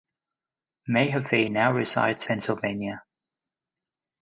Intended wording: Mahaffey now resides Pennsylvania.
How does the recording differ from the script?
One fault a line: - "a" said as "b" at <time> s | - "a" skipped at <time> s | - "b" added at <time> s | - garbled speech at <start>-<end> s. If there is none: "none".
none